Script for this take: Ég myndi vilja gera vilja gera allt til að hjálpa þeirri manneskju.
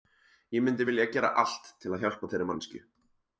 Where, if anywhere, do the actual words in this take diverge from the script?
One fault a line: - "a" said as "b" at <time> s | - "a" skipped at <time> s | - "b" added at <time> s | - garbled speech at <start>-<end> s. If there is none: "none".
- "vilja gera" skipped at 1.3 s